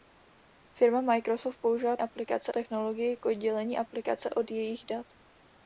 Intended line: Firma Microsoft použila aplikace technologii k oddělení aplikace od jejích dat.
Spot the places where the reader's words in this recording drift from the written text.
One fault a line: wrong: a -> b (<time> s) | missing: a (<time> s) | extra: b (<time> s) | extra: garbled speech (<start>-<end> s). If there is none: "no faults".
no faults